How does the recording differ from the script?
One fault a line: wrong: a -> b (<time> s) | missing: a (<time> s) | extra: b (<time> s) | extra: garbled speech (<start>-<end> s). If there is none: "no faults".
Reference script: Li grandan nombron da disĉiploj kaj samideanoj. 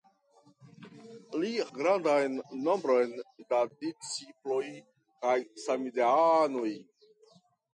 no faults